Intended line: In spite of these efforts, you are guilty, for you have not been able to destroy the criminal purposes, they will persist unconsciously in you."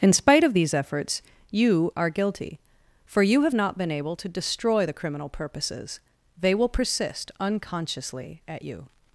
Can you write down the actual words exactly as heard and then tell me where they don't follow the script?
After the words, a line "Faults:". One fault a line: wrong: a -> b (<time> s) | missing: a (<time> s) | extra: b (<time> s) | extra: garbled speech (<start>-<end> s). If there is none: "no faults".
In spite of these efforts, you are guilty, for you have not been able to destroy the criminal purposes, they will persist unconsciously at you."
Faults:
wrong: in -> at (8.5 s)